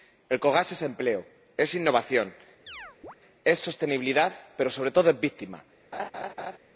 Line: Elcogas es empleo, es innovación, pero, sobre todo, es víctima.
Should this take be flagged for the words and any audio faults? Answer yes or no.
yes